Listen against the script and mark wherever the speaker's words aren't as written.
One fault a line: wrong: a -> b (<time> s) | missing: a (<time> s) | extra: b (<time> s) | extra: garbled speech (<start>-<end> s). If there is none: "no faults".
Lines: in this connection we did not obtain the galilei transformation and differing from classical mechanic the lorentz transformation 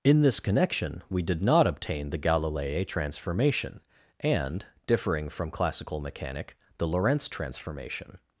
no faults